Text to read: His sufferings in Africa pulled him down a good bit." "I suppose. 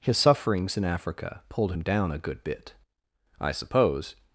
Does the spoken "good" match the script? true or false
true